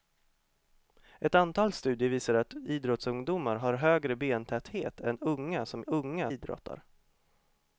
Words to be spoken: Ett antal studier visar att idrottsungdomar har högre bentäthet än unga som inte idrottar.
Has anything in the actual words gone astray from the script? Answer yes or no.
yes